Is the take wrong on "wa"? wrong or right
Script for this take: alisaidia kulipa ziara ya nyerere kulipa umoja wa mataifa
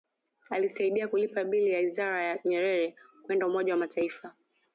right